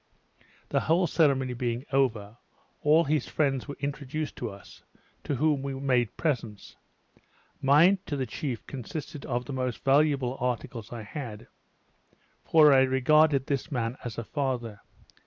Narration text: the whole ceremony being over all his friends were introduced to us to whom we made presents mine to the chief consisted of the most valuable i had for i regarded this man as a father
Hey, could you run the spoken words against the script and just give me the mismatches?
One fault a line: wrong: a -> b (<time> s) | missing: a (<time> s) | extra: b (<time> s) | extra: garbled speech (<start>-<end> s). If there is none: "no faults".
extra: articles (10.4 s)